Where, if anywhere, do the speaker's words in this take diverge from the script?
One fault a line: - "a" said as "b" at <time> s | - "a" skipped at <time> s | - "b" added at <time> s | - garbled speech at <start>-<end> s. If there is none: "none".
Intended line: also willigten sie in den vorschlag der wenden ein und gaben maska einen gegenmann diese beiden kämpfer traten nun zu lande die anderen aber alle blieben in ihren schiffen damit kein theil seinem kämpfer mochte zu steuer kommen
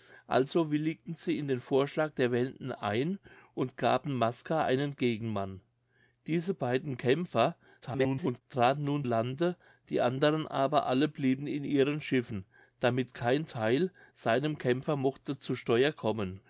- garbled speech at 7.8-8.4 s
- "zu" skipped at 9.0 s